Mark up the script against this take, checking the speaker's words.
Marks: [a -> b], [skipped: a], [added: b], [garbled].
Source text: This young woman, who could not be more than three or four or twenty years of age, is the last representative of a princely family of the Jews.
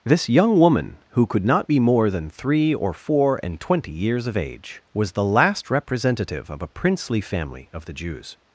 This young woman, who could not be more than three or four [or -> and] twenty years of age, [is -> was] the last representative of a princely family of the Jews.